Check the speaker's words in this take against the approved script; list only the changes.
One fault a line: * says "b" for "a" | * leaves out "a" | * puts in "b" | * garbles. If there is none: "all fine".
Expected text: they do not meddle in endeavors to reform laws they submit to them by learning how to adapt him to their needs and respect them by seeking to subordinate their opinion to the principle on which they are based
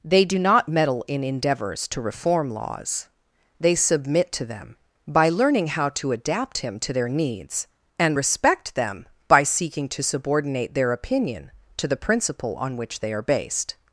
all fine